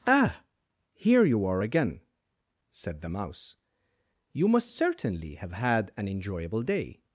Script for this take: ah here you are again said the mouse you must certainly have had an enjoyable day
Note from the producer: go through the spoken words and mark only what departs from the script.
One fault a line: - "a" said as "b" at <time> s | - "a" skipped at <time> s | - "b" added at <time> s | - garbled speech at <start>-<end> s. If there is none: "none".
none